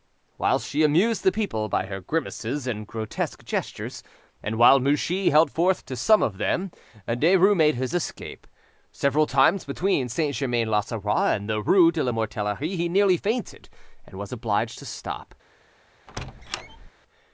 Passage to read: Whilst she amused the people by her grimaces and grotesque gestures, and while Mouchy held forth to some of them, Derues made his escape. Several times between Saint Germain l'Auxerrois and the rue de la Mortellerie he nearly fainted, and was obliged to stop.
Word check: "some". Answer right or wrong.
right